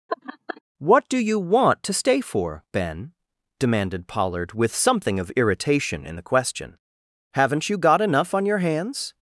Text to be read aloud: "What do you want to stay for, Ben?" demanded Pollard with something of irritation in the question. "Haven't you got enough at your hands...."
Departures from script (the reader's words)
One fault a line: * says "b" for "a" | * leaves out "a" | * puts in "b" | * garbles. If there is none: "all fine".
* says "on" for "at"